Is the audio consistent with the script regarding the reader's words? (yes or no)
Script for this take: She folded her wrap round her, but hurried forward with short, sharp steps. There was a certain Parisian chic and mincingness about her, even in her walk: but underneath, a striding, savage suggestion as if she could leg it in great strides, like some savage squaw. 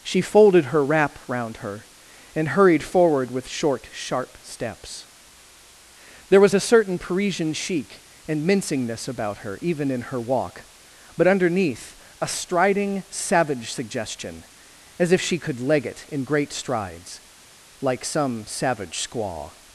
no